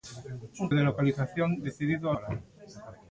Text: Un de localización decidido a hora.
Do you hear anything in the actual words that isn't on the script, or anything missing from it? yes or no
no